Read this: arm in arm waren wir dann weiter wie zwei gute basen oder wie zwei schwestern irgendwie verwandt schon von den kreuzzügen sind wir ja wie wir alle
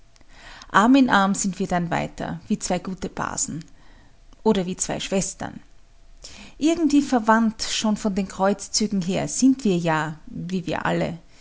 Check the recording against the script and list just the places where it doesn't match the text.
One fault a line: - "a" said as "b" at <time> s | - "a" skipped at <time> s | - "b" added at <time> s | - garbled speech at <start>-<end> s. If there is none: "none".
- "waren" said as "sind" at 1.4 s
- "her" added at 9.0 s